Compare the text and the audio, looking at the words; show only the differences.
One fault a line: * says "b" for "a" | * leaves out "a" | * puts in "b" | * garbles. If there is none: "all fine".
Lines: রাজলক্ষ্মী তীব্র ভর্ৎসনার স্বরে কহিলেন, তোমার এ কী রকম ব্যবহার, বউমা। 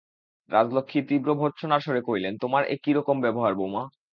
all fine